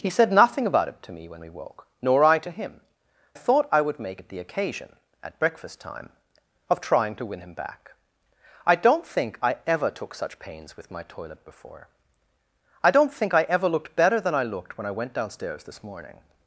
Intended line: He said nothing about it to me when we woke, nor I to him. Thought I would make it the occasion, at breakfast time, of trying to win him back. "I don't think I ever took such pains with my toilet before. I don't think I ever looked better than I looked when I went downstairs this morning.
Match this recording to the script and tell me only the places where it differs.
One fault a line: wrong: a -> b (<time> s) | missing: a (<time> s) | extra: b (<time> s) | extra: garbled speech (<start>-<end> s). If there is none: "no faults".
no faults